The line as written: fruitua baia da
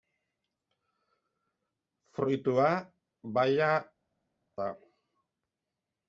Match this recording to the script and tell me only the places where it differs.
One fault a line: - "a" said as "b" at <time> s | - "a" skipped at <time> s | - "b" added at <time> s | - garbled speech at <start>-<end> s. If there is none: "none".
none